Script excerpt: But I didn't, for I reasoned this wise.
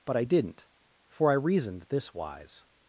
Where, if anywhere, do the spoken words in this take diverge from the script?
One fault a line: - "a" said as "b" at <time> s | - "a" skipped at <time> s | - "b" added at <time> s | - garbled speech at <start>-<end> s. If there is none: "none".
none